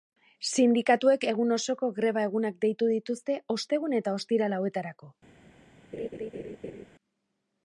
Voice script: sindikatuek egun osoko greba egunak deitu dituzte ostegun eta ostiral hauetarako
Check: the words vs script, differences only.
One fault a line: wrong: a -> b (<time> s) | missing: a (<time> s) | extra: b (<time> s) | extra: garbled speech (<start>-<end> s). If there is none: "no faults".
no faults